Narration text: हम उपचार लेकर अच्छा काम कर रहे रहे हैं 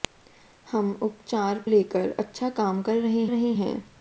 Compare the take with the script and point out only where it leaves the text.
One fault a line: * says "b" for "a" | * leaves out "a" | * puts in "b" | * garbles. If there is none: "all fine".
all fine